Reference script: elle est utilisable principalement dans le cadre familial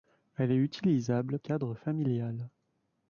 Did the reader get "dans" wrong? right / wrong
wrong